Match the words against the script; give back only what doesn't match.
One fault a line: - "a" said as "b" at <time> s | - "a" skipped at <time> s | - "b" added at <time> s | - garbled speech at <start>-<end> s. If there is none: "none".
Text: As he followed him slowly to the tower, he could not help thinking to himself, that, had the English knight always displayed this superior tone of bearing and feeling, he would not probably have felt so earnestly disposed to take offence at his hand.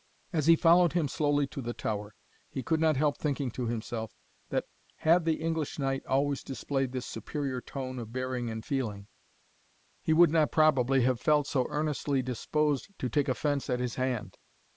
none